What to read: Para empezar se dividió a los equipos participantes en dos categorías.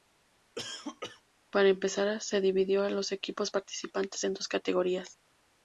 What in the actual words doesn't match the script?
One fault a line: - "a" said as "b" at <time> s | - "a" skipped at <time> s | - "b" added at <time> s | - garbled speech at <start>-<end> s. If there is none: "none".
none